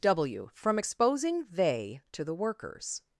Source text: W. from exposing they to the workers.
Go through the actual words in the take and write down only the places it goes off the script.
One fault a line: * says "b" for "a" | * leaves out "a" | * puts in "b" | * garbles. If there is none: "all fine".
all fine